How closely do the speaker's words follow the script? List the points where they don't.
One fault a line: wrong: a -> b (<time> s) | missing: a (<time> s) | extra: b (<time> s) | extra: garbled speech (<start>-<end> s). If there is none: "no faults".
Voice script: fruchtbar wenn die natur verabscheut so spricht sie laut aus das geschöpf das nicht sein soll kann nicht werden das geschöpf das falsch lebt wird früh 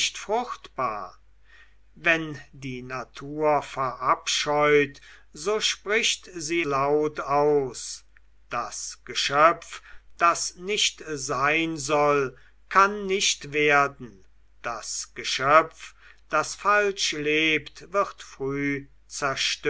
no faults